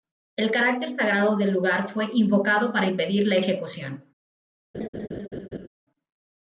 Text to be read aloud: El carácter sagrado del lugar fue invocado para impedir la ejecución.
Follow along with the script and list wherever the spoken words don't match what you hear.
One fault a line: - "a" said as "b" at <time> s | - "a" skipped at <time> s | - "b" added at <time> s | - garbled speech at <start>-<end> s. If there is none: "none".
none